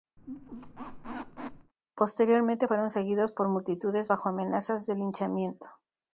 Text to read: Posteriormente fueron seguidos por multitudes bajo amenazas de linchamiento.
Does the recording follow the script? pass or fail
pass